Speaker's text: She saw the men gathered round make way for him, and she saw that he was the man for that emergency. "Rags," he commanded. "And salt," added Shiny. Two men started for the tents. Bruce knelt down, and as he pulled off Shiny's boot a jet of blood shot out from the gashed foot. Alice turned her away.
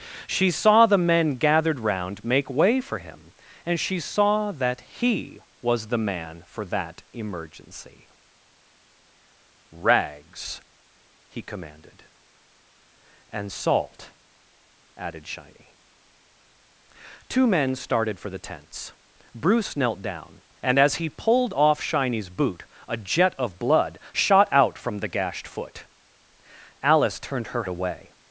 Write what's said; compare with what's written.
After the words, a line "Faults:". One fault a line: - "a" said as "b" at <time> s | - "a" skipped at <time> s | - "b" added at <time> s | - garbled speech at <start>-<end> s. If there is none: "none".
She saw the men gathered round make way for him, and she saw that he was the man for that emergency. "Rags," he commanded. "And salt," added Shiny. Two men started for the tents. Bruce knelt down, and as he pulled off Shiny's boot a jet of blood shot out from the gashed foot. Alice turned her away.
Faults:
none